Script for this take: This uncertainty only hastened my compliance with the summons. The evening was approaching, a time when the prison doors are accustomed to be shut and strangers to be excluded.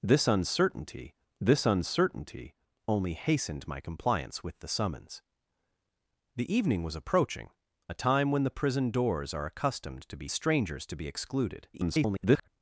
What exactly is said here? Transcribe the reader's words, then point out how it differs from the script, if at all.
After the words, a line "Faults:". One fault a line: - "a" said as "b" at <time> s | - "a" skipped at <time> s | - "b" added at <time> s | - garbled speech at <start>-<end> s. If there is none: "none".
This uncertainty this uncertainty only hastened my compliance with the summons. The evening was approaching, a time when the prison doors are accustomed to be strangers to be excluded. [garbled]
Faults:
- "this uncertainty" added at 1.4 s
- "shut and" skipped at 10.3 s
- garbled speech at 11.7-12.5 s